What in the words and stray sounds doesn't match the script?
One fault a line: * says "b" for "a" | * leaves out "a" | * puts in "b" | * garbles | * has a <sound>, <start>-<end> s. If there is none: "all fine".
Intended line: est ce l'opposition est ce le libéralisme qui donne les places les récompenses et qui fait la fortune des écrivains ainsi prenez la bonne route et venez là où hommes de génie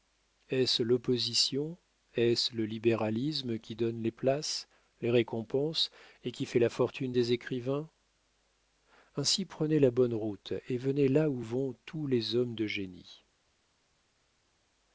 * puts in "vont tous les"